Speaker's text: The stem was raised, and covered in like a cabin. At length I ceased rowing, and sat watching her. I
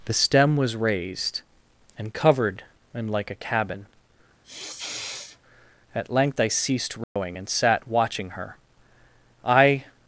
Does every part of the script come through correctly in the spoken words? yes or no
yes